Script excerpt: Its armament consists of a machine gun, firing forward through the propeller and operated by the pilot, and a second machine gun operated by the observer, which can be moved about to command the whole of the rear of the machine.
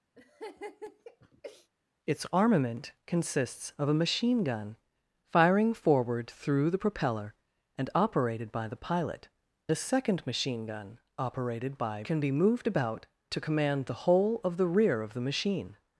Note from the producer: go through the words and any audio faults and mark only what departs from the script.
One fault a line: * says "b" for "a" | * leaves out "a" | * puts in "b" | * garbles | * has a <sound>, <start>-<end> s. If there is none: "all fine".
* has a laugh, 0.2-1.7 s
* leaves out "and"
* leaves out "the observer which"